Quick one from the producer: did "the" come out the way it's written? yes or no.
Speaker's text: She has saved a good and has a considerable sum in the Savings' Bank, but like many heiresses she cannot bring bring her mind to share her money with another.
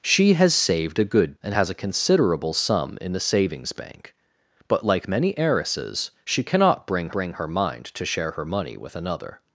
yes